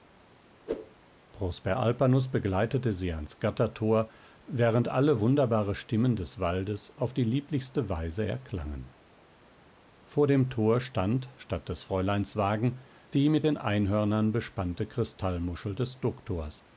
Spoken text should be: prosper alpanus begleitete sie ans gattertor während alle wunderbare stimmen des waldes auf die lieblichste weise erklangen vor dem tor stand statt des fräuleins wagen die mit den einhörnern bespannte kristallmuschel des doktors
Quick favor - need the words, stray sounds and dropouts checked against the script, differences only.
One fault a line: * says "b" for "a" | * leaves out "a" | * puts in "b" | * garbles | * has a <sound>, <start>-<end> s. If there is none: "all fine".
* has a whoosh, 0.7-1.0 s